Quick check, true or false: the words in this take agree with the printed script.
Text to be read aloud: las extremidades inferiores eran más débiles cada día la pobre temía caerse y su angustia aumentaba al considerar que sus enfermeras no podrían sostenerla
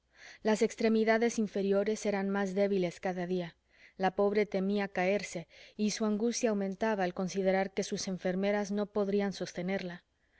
true